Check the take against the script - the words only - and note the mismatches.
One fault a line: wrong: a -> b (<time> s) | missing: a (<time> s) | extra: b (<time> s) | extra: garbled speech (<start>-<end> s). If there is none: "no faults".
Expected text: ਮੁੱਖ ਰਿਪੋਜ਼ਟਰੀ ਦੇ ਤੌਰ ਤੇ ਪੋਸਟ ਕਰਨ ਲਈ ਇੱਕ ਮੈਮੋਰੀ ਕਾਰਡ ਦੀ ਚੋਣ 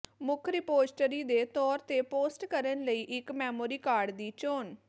no faults